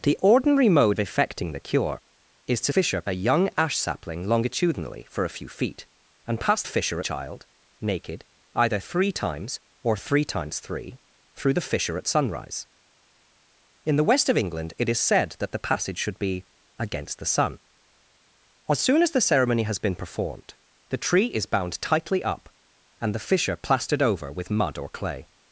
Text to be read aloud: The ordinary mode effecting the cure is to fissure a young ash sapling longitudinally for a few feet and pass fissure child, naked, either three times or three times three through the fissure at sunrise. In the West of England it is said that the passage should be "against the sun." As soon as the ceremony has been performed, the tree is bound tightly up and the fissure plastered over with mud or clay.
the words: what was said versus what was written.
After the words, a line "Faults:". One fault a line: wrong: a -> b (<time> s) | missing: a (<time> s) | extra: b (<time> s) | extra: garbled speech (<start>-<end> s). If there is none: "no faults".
The ordinary mode effecting the cure is to fissure a young ash sapling longitudinally for a few feet and pass fissure child, naked, either three times or three times three through the fissure at sunrise. In the West of England it is said that the passage should be "against the sun." As soon as the ceremony has been performed, the tree is bound tightly up and the fissure plastered over with mud or clay.
Faults:
no faults